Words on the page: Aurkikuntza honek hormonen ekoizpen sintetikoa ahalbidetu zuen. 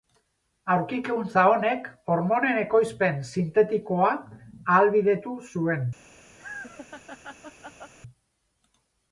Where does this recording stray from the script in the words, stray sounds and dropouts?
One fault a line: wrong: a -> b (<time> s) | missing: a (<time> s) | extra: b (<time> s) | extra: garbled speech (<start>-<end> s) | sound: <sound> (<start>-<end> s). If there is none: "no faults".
sound: laugh (6.4-7.9 s)